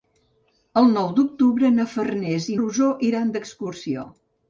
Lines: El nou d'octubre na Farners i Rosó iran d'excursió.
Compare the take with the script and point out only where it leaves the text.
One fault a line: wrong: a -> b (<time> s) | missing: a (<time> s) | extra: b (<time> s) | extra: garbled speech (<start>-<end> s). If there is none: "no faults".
no faults